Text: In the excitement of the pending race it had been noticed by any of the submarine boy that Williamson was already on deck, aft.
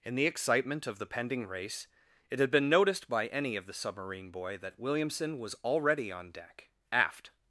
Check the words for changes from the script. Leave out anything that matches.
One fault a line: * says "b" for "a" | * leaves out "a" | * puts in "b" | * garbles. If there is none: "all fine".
all fine